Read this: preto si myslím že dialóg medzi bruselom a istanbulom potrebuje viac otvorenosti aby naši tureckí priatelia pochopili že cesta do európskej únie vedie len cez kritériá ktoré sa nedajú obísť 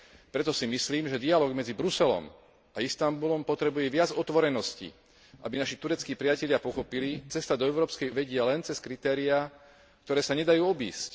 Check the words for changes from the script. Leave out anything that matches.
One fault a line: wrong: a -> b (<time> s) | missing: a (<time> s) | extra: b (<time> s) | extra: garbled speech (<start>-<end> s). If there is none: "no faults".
missing: že (7.2 s)
missing: únie (8.1 s)